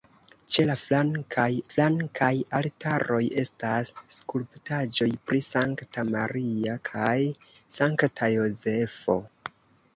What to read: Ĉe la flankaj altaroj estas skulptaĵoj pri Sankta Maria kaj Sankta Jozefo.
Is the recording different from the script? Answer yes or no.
yes